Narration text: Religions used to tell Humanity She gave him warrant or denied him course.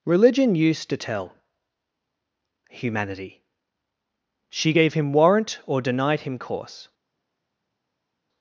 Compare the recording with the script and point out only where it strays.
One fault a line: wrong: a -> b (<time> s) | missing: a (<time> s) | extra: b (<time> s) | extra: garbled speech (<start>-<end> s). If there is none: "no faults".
wrong: Religions -> Religion (0.1 s)